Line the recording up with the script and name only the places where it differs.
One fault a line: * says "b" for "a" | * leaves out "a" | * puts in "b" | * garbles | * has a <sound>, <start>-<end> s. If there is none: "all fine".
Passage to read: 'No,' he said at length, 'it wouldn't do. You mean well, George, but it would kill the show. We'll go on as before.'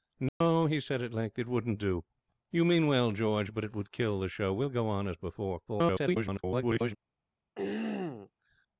* has a dropout, 0.3-0.4 s
* garbles
* has a throat clearing, 7.6-8.3 s